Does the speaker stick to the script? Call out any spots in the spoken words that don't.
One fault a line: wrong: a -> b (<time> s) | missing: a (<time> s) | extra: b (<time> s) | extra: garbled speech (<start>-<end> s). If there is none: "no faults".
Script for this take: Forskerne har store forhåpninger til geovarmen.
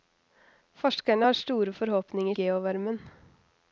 missing: til (2.3 s)